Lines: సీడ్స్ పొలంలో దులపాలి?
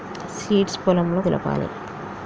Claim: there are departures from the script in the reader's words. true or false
false